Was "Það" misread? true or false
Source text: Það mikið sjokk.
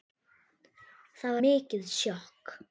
false